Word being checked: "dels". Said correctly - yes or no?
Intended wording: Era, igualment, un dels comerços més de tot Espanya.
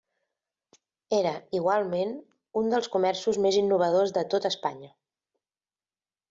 yes